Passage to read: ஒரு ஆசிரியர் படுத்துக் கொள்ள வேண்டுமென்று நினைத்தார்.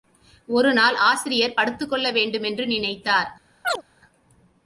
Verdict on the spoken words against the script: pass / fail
fail